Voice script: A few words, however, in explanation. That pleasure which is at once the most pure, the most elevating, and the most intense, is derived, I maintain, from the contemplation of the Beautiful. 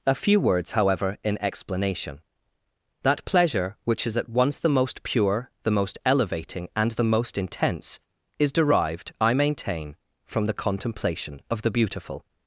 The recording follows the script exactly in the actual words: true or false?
true